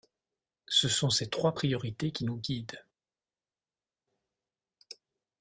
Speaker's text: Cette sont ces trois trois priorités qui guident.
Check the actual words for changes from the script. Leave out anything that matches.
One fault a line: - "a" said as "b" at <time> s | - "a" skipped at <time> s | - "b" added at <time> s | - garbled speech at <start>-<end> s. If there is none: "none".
- "Cette" said as "Ce" at 0.7 s
- "trois" skipped at 1.6 s
- "nous" added at 2.2 s